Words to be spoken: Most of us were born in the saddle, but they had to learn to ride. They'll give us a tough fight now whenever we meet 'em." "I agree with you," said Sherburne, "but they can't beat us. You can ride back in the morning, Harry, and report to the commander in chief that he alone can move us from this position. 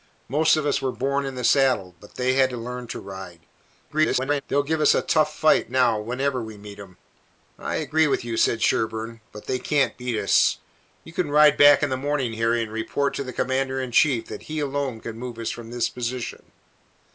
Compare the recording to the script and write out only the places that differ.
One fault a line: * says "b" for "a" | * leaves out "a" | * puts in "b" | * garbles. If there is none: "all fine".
* garbles